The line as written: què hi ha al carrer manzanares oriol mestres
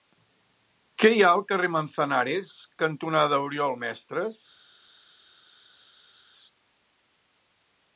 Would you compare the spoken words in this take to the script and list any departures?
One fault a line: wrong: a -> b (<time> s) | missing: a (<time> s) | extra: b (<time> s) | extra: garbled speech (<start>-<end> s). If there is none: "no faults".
extra: cantonada (2.8 s)